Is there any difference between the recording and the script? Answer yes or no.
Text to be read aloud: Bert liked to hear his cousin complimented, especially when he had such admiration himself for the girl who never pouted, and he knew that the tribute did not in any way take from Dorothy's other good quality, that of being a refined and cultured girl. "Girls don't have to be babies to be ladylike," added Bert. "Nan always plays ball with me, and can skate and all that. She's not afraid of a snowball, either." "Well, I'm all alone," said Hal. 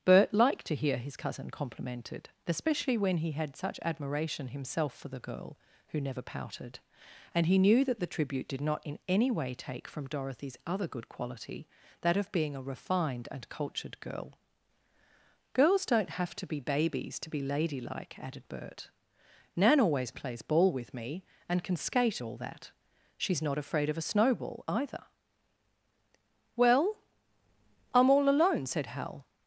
yes